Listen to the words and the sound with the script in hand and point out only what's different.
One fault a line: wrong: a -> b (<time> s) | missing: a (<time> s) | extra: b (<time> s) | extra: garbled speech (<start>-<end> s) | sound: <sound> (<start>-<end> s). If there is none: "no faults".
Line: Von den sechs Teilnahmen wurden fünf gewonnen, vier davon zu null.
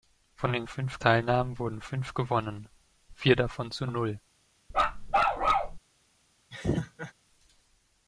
wrong: sechs -> fünf (0.7 s)
sound: bark (4.7-5.8 s)
sound: laugh (6.5-7.1 s)